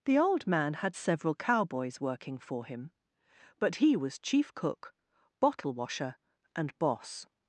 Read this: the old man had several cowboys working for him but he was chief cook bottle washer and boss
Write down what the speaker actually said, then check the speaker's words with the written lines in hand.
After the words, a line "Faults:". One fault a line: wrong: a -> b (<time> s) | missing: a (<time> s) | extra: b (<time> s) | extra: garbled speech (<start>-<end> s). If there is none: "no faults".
the old man had several cowboys working for him but he was chief cook bottle washer and boss
Faults:
no faults